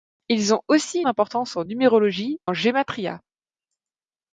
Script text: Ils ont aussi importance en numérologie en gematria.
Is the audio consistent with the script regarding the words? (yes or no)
yes